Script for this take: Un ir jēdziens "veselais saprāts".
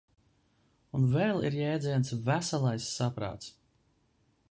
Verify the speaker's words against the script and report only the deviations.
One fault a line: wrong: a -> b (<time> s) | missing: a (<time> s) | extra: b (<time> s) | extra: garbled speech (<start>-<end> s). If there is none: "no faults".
extra: vēl (1.2 s)